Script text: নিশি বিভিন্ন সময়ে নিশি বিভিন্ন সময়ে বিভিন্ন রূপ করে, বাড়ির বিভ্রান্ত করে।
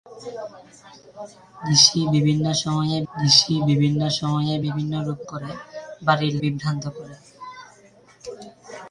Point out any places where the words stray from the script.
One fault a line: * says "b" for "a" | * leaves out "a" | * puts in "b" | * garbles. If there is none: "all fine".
all fine